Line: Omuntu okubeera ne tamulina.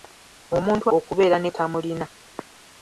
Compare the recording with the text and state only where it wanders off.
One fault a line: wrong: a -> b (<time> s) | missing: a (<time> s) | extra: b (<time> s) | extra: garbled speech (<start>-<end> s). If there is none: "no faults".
no faults